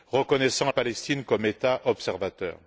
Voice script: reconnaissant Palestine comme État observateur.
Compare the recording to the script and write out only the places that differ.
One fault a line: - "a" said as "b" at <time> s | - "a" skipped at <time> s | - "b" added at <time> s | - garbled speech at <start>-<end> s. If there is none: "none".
none